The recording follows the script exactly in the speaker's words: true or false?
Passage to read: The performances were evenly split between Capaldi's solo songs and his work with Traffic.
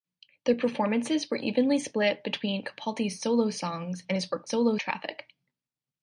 false